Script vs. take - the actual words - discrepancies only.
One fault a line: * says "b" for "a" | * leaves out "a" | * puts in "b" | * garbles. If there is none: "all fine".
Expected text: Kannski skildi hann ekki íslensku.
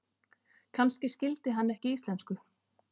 all fine